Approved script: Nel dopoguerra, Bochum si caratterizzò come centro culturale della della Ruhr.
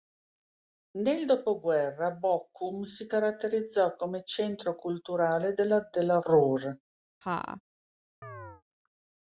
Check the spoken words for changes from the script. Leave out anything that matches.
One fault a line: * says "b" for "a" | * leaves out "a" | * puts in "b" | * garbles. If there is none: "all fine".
all fine